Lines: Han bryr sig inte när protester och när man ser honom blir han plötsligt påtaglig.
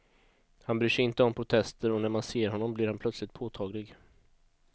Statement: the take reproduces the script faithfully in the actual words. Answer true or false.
false